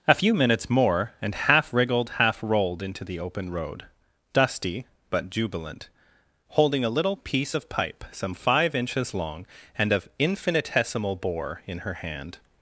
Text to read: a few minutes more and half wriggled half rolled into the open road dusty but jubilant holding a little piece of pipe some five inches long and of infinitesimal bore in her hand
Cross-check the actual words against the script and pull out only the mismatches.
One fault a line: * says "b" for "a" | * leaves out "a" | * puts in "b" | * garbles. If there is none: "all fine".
all fine